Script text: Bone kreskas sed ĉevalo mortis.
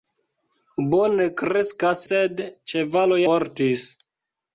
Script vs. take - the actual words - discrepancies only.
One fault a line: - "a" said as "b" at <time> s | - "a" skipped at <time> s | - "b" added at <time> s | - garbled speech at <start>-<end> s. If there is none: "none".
none